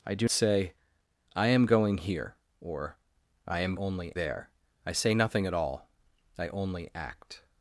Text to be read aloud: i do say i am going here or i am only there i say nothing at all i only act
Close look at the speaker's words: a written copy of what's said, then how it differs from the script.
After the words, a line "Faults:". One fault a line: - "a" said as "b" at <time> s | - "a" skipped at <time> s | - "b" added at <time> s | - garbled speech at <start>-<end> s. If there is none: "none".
i do say i am going here or i am only there i say nothing at all i only act
Faults:
none